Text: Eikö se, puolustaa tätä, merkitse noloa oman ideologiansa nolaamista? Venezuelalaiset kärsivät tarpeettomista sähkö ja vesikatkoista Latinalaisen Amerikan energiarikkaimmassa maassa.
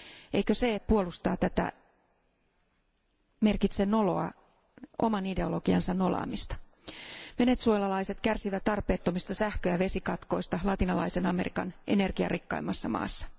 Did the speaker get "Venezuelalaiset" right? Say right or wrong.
right